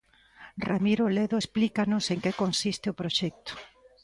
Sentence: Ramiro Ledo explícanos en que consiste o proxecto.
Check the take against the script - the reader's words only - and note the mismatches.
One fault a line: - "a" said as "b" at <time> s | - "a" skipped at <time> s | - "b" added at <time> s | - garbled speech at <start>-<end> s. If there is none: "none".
none